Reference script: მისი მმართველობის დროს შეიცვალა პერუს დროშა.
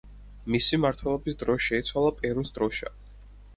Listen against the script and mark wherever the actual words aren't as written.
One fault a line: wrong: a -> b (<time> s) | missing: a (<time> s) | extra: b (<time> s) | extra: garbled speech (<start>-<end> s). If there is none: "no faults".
no faults